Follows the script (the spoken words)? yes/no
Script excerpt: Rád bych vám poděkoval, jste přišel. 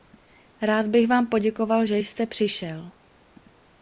no